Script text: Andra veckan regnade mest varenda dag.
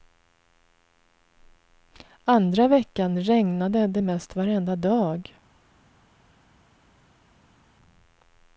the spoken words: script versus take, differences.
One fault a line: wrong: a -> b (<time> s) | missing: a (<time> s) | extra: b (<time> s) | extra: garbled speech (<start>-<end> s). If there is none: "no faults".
extra: det (3.9 s)